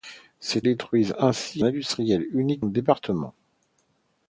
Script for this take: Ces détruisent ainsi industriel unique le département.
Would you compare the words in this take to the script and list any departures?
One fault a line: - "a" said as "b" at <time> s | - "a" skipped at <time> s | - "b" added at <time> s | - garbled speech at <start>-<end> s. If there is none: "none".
none